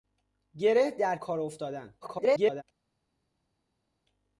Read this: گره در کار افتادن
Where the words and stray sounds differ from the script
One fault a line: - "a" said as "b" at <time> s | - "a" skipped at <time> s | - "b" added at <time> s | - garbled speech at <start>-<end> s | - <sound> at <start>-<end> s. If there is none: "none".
- garbled speech at 2.0-2.6 s